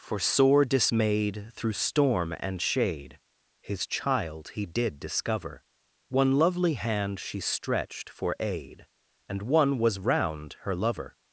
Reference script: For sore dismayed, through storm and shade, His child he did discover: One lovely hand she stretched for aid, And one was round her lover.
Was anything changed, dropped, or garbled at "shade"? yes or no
no